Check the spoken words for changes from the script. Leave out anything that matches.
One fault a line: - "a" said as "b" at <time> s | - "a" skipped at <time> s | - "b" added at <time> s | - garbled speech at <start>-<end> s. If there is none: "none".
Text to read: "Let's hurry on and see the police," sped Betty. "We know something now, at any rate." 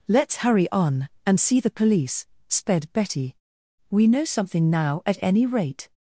none